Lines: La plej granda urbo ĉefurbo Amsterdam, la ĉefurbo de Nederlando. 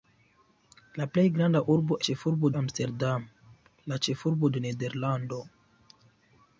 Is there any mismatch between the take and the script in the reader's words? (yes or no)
no